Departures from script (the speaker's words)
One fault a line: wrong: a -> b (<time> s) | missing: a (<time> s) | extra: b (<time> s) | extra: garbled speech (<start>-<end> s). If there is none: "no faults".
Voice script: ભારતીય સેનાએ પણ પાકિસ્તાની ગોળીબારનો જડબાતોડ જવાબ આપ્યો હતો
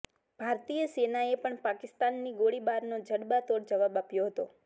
no faults